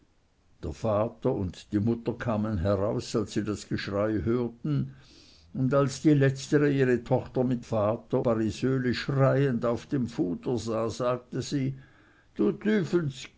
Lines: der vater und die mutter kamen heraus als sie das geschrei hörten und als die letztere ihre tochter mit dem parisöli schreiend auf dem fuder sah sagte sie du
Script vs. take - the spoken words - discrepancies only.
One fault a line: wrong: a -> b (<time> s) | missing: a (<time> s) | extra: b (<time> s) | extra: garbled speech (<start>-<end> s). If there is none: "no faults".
wrong: dem -> vater (7.6 s)